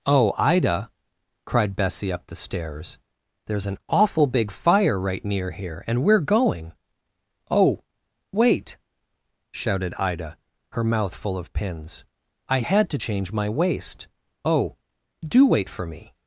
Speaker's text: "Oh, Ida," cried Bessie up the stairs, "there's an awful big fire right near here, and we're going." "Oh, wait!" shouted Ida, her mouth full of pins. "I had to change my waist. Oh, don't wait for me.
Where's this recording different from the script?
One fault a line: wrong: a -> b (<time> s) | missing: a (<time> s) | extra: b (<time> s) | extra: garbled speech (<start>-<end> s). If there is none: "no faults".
wrong: don't -> do (15.3 s)